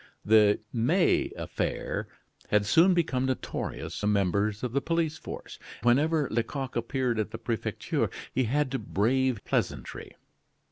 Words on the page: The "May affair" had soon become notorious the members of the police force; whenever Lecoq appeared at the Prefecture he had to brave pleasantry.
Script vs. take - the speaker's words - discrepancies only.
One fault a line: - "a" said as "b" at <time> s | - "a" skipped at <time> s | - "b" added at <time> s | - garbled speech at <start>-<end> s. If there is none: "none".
none